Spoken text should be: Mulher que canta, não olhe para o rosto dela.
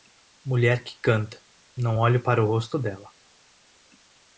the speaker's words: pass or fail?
pass